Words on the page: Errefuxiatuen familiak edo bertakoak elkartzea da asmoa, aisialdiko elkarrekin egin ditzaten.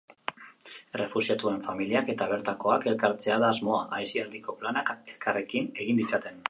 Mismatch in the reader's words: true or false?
true